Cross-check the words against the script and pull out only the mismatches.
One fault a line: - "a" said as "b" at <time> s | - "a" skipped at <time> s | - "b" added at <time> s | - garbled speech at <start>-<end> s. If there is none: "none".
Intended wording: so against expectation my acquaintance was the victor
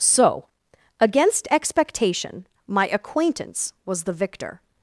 none